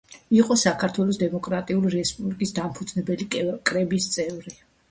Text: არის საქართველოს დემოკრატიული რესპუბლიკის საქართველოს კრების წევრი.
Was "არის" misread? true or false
true